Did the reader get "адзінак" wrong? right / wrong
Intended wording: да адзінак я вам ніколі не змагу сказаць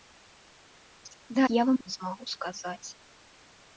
wrong